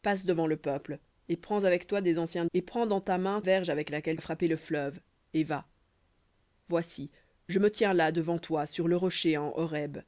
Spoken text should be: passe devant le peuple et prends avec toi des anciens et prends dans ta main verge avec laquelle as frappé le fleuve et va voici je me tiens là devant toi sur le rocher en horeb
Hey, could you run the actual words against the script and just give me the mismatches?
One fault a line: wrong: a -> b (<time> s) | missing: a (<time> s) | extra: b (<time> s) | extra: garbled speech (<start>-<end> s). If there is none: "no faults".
no faults